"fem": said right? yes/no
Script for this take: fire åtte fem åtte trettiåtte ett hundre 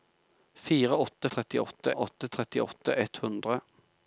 no